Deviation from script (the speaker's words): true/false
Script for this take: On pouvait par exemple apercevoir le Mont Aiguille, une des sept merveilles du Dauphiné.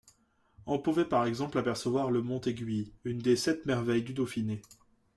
false